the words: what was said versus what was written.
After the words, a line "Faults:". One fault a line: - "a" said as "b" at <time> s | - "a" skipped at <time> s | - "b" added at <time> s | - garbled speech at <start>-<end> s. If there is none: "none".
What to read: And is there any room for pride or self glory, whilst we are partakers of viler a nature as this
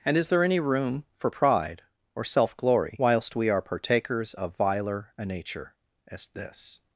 And is there any room for pride or self glory, whilst we are partakers of viler a nature as this
Faults:
none